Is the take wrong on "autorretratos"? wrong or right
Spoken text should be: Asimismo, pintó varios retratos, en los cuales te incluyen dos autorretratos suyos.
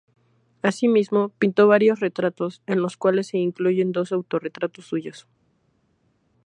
right